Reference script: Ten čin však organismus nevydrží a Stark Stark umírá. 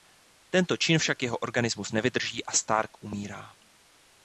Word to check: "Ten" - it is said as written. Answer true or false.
false